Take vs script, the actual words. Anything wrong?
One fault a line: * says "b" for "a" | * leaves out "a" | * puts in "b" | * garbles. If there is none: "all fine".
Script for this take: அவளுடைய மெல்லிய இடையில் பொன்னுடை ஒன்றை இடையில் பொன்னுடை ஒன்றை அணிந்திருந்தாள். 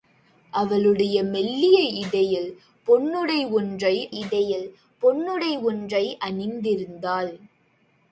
all fine